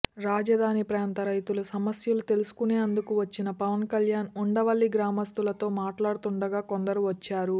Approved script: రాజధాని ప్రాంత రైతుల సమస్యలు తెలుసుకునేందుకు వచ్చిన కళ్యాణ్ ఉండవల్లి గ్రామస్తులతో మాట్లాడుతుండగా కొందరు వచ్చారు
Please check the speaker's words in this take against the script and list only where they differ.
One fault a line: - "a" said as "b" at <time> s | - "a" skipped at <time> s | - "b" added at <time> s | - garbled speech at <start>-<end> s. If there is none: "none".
- "పవన్" added at 3.6 s